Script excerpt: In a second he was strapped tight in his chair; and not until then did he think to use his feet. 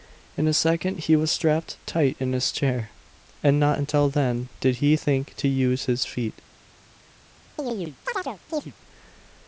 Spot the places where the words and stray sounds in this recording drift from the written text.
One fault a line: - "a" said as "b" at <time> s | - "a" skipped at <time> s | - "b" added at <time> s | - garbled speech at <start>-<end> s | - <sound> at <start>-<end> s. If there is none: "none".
- chirp at 7.6-8.7 s